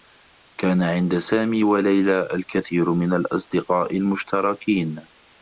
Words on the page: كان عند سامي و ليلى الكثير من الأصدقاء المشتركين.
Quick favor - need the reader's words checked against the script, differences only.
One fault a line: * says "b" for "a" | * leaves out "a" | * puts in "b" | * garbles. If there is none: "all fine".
all fine